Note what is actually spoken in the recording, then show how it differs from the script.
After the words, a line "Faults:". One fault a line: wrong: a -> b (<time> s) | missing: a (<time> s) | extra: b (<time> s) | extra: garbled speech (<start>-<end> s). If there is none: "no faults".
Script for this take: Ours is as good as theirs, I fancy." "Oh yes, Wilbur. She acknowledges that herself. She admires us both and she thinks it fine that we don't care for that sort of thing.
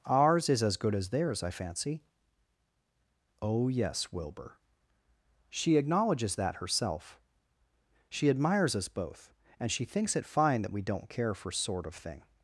Ours is as good as theirs, I fancy." "Oh yes, Wilbur. She acknowledges that herself. She admires us both and she thinks it fine that we don't care for sort of thing.
Faults:
missing: that (11.5 s)